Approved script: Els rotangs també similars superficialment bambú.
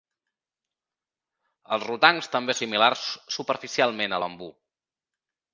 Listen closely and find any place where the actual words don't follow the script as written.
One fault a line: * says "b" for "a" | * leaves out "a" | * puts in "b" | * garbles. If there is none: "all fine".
all fine